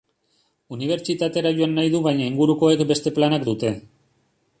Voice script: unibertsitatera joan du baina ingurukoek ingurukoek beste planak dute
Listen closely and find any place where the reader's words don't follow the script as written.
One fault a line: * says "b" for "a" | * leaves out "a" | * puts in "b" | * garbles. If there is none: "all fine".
* puts in "nahi"
* leaves out "ingurukoek"